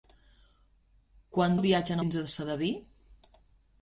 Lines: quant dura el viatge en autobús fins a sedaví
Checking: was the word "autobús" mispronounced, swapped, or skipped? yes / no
yes